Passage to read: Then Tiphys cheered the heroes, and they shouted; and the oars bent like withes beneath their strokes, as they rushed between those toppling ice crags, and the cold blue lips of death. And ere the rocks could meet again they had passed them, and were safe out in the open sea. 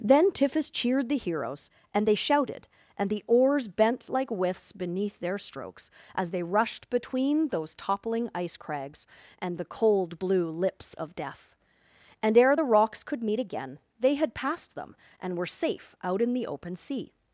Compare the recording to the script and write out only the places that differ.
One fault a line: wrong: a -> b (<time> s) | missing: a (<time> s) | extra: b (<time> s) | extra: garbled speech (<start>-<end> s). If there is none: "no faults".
no faults